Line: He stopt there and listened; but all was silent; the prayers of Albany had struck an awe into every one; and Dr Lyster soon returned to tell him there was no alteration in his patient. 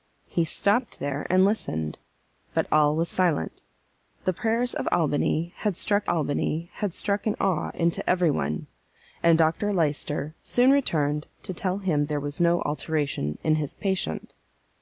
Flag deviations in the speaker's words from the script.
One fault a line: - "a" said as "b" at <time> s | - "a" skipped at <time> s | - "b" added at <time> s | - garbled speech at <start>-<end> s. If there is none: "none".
- "Albany had struck" added at 6.1 s